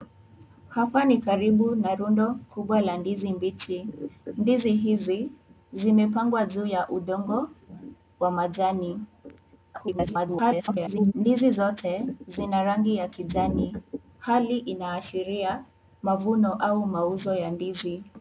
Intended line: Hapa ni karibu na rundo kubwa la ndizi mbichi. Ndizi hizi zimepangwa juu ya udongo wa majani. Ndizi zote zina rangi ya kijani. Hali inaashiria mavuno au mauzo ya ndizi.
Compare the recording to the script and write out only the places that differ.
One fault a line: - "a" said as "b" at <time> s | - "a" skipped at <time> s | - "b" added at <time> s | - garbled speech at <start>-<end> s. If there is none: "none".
- garbled speech at 9.7-11.1 s